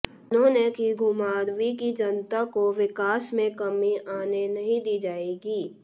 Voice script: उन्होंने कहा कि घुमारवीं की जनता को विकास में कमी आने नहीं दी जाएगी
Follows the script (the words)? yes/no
no